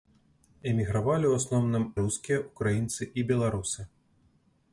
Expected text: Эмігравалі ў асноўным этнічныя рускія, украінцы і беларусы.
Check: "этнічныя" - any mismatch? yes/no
yes